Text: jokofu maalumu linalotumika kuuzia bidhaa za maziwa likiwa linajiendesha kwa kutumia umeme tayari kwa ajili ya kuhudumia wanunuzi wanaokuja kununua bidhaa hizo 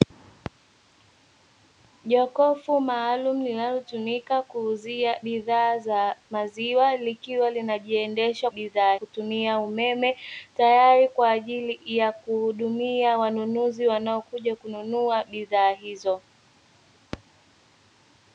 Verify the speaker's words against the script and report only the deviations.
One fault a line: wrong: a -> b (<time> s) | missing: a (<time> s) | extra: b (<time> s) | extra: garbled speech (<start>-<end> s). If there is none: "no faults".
wrong: kwa -> bidhaa (8.5 s)